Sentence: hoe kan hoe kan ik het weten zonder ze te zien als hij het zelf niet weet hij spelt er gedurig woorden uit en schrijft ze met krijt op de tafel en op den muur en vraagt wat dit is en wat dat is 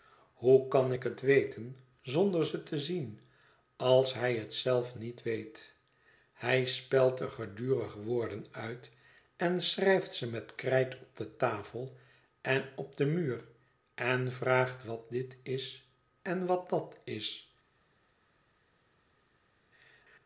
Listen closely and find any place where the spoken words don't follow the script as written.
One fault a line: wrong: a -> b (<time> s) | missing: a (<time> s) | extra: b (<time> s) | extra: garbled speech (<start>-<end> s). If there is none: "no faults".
missing: hoe kan (0.9 s)